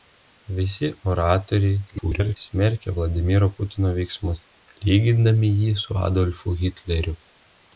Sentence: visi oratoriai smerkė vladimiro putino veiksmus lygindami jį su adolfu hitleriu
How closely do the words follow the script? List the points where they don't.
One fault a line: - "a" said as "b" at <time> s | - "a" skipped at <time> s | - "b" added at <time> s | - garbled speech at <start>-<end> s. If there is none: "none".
- garbled speech at 1.9-2.4 s